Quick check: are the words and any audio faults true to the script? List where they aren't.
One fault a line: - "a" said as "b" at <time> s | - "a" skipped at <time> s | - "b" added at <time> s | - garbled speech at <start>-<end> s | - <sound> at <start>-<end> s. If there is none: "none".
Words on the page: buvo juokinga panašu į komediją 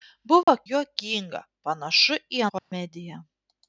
- dropout at 0.4-0.5 s
- dropout at 2.6-2.7 s